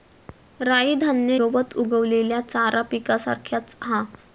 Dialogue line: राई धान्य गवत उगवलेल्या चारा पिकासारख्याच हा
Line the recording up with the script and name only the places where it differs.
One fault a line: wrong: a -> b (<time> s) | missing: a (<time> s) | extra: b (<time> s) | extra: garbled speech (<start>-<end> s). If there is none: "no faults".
no faults